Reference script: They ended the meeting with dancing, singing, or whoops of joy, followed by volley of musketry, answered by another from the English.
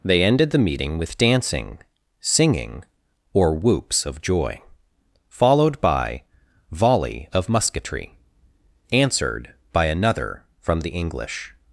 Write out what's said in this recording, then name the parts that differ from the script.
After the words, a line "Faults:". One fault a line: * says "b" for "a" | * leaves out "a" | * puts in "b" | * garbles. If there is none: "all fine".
They ended the meeting with dancing, singing, or whoops of joy, followed by volley of musketry, answered by another from the English.
Faults:
all fine